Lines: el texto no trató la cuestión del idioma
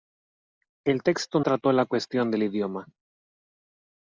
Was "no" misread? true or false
true